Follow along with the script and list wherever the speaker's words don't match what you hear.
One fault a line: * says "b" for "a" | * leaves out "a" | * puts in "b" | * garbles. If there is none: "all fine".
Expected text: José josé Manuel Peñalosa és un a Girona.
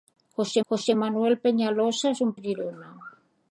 all fine